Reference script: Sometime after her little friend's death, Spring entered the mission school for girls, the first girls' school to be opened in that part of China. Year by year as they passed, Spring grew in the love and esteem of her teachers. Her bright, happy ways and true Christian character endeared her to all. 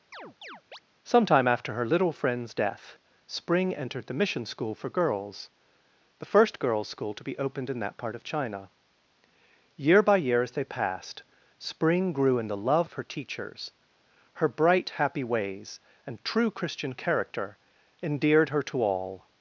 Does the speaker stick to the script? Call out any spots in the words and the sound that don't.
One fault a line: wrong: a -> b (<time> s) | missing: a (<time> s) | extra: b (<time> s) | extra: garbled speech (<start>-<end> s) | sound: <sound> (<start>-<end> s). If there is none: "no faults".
sound: chirp (0.1-0.8 s)
missing: and esteem (12.9 s)